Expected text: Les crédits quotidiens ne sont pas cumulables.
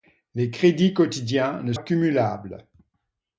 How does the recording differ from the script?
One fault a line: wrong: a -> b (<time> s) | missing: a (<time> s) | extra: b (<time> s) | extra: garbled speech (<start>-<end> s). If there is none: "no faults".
missing: sont pas (1.7 s)